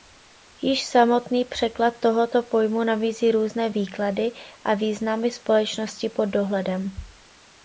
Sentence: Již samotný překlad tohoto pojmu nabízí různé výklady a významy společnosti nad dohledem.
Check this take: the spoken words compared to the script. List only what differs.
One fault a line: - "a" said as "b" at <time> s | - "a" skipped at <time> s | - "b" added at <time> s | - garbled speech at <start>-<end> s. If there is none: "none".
- "nad" said as "pod" at 6.1 s